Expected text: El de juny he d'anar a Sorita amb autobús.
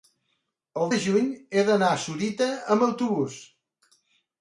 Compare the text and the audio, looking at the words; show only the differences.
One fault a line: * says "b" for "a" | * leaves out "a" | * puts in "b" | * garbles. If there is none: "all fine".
all fine